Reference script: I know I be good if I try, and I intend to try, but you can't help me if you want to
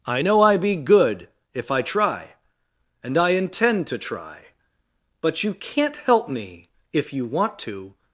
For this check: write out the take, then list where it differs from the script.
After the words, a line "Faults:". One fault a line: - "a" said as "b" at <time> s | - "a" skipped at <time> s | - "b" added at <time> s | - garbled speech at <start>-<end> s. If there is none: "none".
I know I be good if I try, and I intend to try, but you can't help me if you want to
Faults:
none